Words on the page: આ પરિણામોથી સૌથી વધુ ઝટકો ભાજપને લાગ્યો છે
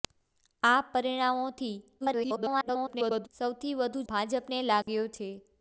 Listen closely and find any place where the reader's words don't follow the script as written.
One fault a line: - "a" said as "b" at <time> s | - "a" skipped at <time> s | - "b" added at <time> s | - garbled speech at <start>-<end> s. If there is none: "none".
- garbled speech at 2.0-3.3 s
- "ઝટકો" skipped at 4.0 s